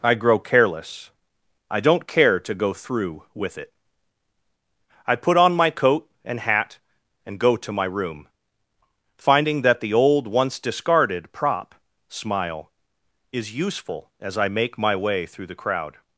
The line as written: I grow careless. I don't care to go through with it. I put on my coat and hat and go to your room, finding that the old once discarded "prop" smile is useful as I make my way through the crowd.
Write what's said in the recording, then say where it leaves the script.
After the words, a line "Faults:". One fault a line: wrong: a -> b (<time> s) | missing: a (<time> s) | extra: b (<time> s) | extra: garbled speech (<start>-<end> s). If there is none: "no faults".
I grow careless. I don't care to go through with it. I put on my coat and hat and go to my room, finding that the old once discarded "prop" smile is useful as I make my way through the crowd.
Faults:
wrong: your -> my (7.7 s)